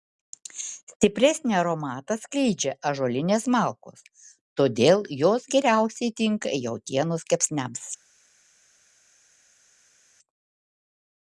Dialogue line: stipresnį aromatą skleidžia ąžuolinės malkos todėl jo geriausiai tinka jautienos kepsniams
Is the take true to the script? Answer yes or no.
no